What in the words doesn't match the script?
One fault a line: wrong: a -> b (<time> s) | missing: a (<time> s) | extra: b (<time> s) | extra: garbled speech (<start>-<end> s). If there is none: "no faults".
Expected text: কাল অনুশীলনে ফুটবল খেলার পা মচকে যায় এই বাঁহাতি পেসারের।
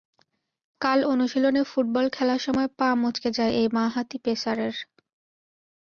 extra: সময় (2.4 s)